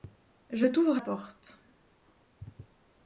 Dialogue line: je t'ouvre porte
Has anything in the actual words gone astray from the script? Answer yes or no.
no